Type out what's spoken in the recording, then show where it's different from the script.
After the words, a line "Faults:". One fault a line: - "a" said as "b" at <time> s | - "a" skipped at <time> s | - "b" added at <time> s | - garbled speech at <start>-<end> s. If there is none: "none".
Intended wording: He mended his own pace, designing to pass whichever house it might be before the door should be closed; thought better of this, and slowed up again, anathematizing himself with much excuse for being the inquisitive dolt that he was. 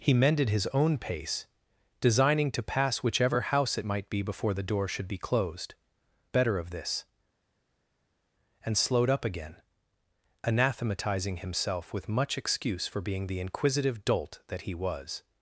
He mended his own pace, designing to pass whichever house it might be before the door should be closed; better of this, and slowed up again, anathematizing himself with much excuse for being the inquisitive dolt that he was.
Faults:
- "thought" skipped at 5.7 s